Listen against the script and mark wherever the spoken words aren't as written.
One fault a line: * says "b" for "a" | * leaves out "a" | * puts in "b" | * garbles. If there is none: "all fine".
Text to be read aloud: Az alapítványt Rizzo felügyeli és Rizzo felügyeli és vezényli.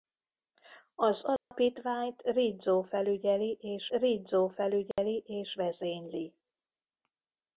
all fine